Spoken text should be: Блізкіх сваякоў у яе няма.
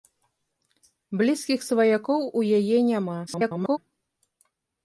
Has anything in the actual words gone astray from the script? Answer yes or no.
yes